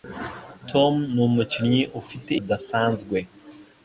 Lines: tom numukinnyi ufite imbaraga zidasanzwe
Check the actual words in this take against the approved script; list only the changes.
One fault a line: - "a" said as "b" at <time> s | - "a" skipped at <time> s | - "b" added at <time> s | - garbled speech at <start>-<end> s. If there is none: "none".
- "imbaraga" skipped at 2.3 s